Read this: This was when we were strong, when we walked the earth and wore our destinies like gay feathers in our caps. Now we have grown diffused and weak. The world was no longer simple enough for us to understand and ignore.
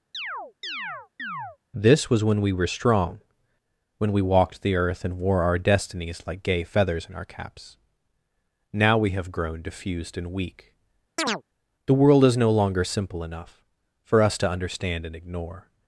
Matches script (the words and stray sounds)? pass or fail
fail